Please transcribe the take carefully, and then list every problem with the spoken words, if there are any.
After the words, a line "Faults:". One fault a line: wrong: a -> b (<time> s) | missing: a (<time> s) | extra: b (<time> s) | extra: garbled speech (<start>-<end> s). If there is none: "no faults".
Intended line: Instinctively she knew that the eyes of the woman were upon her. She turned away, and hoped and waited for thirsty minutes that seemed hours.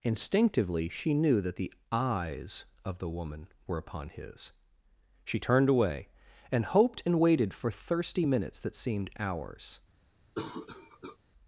Instinctively she knew that the eyes of the woman were upon his. She turned away, and hoped and waited for thirsty minutes that seemed hours.
Faults:
wrong: her -> his (4.1 s)